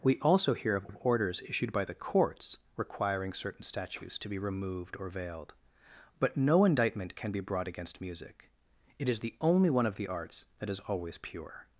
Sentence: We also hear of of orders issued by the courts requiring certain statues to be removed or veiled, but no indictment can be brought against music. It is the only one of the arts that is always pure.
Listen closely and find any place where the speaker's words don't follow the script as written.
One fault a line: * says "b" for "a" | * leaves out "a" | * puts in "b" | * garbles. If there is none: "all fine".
all fine